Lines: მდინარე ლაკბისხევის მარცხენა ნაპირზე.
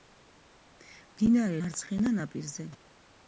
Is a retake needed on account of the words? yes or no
yes